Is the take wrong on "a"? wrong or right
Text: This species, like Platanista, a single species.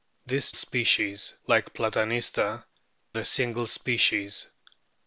right